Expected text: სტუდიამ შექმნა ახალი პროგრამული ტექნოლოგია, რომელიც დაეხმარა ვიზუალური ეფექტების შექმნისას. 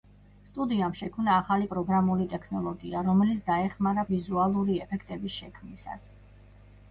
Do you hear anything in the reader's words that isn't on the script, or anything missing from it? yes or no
no